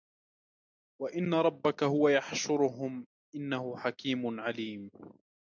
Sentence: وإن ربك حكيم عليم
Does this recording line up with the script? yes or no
no